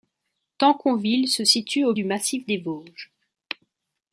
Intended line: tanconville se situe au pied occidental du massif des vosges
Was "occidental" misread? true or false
true